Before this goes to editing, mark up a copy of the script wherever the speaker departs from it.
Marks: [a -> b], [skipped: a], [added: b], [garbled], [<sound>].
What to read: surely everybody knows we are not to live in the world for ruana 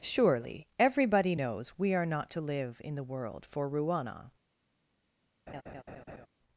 surely everybody knows we are not to live in the world for ruana [laugh]